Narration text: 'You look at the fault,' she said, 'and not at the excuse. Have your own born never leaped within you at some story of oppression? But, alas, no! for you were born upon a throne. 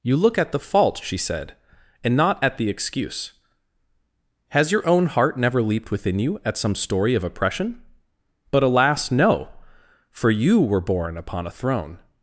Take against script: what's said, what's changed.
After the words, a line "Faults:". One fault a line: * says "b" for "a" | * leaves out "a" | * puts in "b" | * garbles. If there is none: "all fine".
'You look at the fault,' she said, 'and not at the excuse. Has your own heart never leaped within you at some story of oppression? But, alas, no! for you were born upon a throne.
Faults:
* says "Has" for "Have"
* says "heart" for "born"